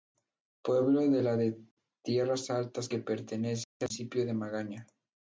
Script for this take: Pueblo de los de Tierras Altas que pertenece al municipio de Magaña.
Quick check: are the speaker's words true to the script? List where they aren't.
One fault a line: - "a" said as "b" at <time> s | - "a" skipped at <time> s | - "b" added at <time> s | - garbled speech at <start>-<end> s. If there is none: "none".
- "los" said as "la" at 1.2 s